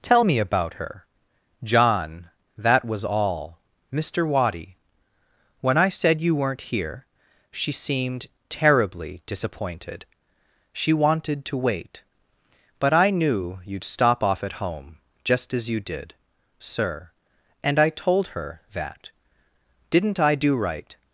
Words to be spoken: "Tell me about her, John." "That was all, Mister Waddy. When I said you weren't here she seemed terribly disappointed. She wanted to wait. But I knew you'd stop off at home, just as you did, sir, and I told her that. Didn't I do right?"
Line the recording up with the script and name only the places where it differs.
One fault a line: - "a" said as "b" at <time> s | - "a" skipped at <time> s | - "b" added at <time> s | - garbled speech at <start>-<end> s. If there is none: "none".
none